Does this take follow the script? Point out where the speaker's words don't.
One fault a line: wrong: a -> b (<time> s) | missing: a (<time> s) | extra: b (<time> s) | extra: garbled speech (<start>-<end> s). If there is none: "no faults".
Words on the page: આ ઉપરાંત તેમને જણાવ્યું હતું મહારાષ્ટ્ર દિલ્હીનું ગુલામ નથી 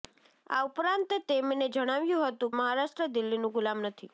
no faults